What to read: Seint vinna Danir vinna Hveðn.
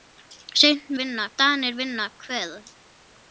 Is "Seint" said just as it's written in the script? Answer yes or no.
yes